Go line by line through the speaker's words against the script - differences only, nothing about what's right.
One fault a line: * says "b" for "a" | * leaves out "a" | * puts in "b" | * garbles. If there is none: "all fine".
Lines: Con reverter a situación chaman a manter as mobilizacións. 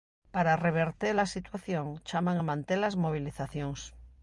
* says "Para" for "Con"